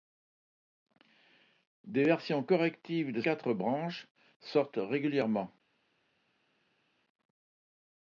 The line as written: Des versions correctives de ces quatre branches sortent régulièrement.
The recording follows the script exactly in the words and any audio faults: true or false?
false